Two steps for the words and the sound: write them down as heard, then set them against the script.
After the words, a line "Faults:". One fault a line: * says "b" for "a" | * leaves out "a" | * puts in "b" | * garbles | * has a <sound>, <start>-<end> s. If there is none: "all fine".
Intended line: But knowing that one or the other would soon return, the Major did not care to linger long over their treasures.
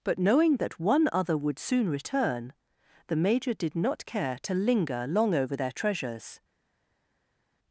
But knowing that one other would soon return, the Major did not care to linger long over their treasures.
Faults:
* leaves out "or the"